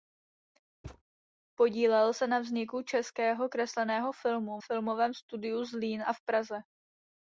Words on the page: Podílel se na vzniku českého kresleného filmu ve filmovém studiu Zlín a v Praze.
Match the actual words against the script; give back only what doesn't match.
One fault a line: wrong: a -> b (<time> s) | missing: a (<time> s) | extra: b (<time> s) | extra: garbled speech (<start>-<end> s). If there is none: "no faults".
missing: ve (4.6 s)